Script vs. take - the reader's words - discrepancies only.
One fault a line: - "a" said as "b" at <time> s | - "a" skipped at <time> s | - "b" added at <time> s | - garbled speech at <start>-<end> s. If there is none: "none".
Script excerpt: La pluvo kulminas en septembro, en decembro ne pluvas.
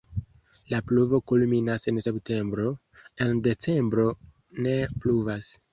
none